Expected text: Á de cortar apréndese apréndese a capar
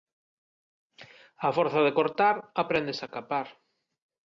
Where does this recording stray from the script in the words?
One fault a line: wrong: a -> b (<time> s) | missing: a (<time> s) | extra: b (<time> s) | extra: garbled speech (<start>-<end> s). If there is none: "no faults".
extra: forza (1.6 s)
missing: apréndese (3.0 s)